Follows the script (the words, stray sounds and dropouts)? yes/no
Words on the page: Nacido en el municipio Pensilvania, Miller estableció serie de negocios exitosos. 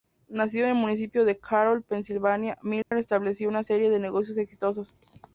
no